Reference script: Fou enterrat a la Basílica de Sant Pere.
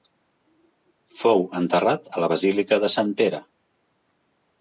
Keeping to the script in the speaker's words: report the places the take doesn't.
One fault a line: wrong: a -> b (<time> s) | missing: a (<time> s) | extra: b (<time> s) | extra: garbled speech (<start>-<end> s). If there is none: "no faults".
no faults